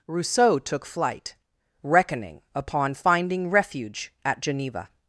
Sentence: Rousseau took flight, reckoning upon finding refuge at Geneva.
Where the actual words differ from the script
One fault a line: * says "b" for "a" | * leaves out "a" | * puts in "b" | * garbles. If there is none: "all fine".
all fine